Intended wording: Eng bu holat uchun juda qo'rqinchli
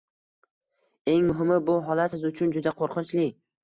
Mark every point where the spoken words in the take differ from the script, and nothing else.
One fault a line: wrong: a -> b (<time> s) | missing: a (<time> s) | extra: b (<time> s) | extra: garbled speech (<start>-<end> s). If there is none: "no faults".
extra: muhimi (1.3 s)
extra: siz (2.1 s)